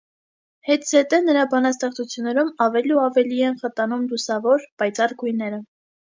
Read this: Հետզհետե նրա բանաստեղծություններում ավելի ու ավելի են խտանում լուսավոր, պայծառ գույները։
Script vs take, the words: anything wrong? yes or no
no